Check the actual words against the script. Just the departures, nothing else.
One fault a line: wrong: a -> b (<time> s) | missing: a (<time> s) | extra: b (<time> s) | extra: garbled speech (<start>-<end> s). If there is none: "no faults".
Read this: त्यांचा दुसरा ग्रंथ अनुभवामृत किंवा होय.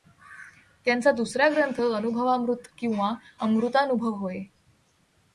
extra: अमृतानुभव (3.4 s)